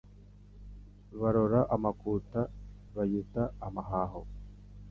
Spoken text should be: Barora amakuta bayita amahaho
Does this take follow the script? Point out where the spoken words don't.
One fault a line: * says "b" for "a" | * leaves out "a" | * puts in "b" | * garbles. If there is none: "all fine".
all fine